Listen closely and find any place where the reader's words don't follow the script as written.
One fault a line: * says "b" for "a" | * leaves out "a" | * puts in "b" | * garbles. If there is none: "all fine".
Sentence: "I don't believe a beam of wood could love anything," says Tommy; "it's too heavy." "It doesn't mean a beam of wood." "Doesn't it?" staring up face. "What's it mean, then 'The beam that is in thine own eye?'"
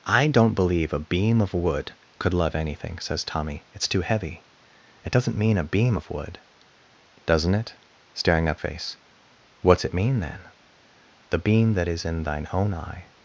all fine